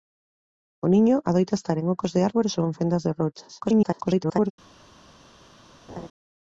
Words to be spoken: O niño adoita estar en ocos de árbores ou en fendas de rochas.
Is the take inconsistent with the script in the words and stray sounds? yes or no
yes